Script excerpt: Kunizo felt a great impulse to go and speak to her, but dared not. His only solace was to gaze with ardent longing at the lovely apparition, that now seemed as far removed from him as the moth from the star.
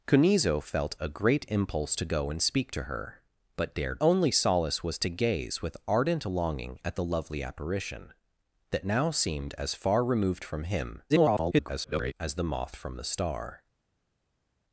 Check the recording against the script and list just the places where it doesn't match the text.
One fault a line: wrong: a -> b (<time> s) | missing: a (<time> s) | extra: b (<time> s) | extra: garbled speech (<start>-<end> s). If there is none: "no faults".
missing: not His (4.0 s)
extra: garbled speech (11.1-12.1 s)